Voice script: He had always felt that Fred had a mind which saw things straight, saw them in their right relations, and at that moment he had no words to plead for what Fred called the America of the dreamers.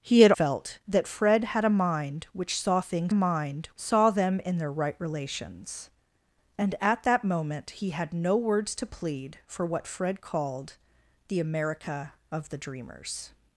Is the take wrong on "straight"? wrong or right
wrong